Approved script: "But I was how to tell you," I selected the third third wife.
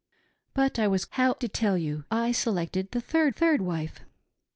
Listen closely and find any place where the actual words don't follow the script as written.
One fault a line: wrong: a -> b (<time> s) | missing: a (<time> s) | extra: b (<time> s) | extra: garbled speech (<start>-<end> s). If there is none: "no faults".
no faults